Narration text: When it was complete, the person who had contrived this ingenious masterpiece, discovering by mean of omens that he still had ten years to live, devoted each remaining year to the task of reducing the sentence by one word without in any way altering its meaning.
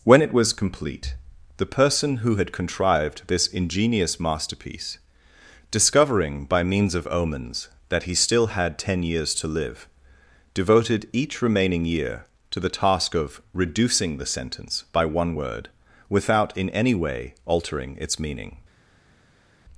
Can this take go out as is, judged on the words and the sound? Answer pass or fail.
fail